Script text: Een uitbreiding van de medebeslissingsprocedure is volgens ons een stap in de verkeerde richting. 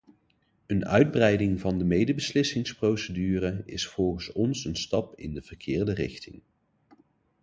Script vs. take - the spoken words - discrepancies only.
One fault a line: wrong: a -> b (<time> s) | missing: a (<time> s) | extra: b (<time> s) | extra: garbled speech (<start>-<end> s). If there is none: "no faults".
no faults